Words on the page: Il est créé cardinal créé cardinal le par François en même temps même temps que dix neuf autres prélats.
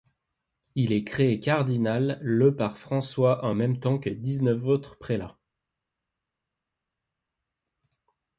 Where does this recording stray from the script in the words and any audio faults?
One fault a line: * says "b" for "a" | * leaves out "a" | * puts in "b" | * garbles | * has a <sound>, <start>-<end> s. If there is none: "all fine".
* leaves out "créé cardinal"
* leaves out "même temps"